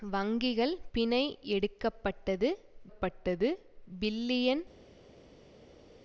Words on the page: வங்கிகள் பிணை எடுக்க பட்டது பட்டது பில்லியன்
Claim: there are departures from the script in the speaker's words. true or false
false